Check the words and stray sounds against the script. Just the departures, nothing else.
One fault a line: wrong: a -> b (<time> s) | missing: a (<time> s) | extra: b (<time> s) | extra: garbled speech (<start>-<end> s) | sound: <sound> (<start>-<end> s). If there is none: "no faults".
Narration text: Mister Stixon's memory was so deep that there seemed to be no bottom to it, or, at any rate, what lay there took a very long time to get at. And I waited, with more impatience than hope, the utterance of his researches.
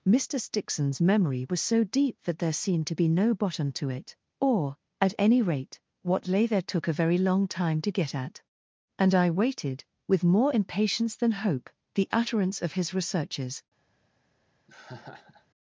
sound: laugh (14.7-15.5 s)